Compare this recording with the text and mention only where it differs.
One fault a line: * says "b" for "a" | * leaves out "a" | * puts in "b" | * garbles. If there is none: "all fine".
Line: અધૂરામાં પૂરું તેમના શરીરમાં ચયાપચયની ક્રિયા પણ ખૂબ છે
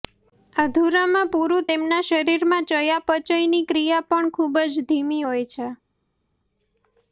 * puts in "જ ધીમી હોય"